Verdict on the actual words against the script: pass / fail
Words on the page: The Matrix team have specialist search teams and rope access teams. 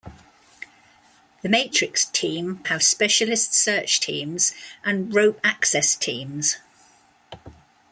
pass